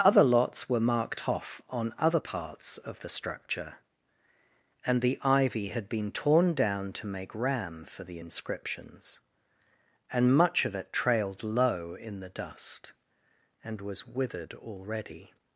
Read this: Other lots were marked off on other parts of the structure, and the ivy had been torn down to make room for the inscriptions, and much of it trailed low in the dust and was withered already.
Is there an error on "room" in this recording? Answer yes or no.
yes